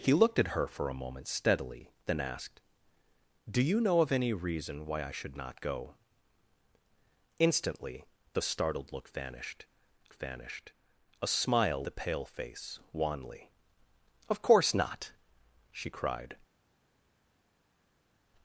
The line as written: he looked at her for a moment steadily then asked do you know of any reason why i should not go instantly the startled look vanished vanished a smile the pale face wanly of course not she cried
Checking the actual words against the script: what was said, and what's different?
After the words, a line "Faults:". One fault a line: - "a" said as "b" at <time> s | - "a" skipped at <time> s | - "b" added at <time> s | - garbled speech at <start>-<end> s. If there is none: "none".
he looked at her for a moment steadily then asked do you know of any reason why i should not go instantly the startled look vanished vanished a smile the pale face wanly of course not she cried
Faults:
none